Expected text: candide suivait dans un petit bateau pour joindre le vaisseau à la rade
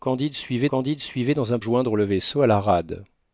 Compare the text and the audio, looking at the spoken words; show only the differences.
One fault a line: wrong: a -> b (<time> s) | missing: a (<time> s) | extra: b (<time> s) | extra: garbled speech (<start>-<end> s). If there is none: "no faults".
extra: candide suivait (0.7 s)
missing: petit bateau pour (1.6 s)